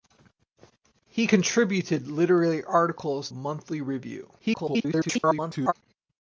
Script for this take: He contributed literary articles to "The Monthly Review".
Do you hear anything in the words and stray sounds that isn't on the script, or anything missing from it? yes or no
yes